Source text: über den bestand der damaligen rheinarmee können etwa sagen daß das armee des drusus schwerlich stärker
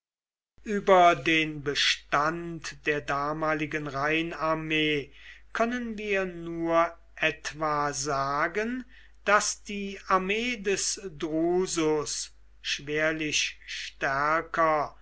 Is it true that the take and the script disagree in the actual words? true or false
true